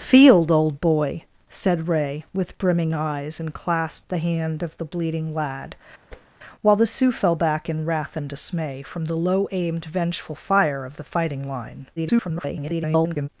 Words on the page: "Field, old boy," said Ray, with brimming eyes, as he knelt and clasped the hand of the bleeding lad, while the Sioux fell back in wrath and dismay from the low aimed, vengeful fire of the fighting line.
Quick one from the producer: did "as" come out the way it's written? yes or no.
no